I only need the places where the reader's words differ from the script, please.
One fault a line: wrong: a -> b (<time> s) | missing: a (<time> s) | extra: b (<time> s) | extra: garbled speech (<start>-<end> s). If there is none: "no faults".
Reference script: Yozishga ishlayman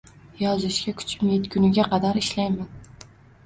extra: kuchim yetguniga qadar (1.0 s)